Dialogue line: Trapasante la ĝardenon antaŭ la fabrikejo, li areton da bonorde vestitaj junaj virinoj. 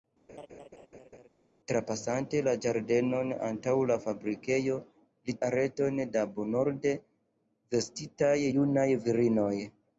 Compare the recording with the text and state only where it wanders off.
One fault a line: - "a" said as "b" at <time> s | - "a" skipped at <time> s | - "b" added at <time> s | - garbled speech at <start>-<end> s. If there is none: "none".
none